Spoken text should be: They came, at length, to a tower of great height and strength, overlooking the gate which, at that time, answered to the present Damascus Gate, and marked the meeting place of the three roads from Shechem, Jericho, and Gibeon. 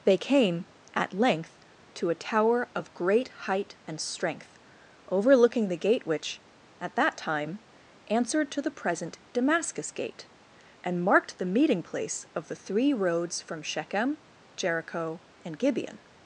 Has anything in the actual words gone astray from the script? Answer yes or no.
no